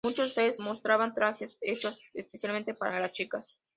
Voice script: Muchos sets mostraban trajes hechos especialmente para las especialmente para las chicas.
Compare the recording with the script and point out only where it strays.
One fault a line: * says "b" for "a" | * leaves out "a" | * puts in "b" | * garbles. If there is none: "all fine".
* leaves out "especialmente para las"